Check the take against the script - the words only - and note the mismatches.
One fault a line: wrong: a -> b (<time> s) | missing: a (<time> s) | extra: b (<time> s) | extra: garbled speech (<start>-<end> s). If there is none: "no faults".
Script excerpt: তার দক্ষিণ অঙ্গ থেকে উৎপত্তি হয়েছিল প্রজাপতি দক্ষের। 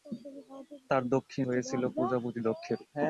missing: অঙ্গ থেকে উৎপত্তি (1.4 s)